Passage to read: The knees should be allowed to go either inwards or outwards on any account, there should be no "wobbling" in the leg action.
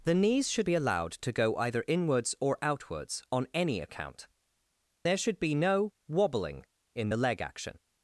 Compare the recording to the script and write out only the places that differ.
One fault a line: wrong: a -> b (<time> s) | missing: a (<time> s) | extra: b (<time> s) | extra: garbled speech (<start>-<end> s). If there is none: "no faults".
no faults